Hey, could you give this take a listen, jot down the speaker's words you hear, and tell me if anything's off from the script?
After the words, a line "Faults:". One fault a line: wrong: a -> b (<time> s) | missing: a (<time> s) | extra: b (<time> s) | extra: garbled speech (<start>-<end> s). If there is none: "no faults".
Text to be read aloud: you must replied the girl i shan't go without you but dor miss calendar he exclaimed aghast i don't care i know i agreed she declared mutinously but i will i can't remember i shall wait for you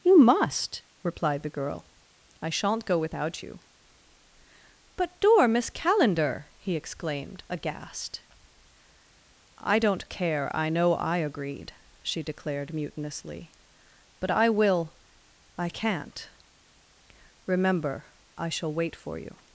you must replied the girl i shan't go without you but dor miss calendar he exclaimed aghast i don't care i know i agreed she declared mutinously but i will i can't remember i shall wait for you
Faults:
no faults